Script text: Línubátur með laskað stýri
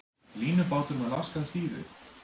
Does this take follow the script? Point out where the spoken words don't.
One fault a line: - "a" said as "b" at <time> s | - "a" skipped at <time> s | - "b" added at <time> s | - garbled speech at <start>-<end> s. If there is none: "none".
none